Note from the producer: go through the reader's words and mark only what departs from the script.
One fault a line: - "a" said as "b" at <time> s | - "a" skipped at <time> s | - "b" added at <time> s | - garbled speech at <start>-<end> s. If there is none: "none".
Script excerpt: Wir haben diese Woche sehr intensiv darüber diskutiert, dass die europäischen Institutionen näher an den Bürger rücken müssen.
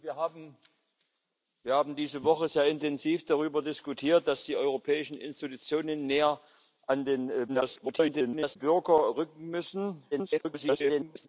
- garbled speech at 7.5-8.6 s
- garbled speech at 10.1-11.3 s